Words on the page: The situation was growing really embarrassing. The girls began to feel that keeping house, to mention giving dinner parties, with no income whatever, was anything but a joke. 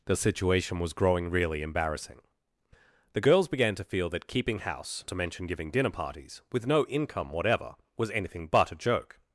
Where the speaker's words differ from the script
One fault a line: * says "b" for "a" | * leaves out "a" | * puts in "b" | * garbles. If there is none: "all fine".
all fine